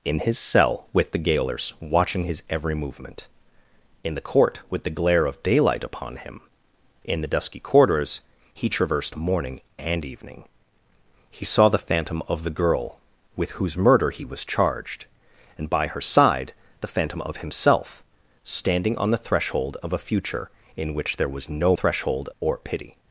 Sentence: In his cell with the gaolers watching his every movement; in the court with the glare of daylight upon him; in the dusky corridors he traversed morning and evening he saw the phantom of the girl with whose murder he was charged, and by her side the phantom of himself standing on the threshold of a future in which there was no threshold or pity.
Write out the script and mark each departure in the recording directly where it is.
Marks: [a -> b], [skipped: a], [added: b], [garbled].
In his cell with the gaolers watching his every movement; in the court with the glare of daylight upon him; in the dusky corridors he traversed morning and evening he saw the phantom of the girl with whose murder he was charged, and by her side the phantom of himself standing on the threshold of a future in which there was no threshold or pity.